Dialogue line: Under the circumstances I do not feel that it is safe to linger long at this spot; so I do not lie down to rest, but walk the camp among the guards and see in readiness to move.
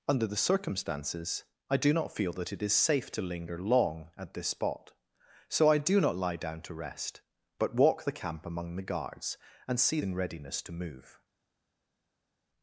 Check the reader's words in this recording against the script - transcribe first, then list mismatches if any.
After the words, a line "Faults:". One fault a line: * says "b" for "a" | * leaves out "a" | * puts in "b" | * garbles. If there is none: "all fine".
Under the circumstances I do not feel that it is safe to linger long at this spot; so I do not lie down to rest, but walk the camp among the guards and see in readiness to move.
Faults:
all fine